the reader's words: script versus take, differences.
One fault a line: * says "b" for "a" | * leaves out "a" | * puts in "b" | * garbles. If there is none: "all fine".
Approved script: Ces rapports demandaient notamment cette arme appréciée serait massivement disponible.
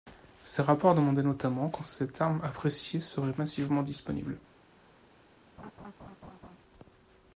* puts in "quand"